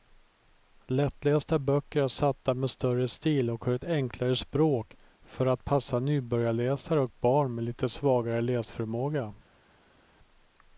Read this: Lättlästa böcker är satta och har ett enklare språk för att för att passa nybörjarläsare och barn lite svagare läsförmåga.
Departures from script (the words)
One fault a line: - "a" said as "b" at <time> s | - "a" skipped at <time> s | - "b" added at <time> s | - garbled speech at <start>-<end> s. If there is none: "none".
- "med större stil" added at 2.5 s
- "för att" skipped at 5.6 s
- "med" added at 7.5 s